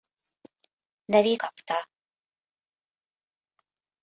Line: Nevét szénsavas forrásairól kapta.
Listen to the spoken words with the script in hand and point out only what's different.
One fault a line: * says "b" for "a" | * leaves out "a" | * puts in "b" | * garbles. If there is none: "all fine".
* leaves out "szénsavas forrásairól"